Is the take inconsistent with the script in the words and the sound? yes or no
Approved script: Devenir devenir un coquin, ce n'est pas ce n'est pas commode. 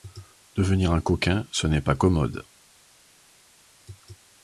yes